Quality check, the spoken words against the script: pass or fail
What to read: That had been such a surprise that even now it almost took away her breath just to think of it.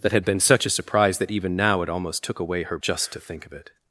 fail